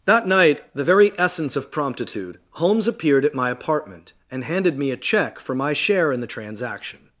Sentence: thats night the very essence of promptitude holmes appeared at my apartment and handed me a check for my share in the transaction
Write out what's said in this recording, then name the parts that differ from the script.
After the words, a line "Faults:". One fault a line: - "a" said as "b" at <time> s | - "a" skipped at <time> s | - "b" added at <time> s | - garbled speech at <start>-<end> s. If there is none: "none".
that night the very essence of promptitude holmes appeared at my apartment and handed me a check for my share in the transaction
Faults:
- "thats" said as "that" at 0.1 s